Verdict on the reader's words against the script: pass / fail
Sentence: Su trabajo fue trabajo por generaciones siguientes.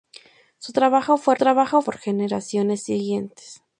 pass